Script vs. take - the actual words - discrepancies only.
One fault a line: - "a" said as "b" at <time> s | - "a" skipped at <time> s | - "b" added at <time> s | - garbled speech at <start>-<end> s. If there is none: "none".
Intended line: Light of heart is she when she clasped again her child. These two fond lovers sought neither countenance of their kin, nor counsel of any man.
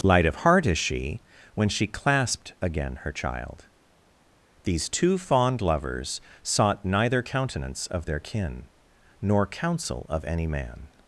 none